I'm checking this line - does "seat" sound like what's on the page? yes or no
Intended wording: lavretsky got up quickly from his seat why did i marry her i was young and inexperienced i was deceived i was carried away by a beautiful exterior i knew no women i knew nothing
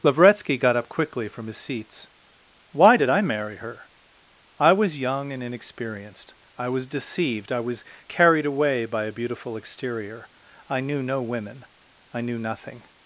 no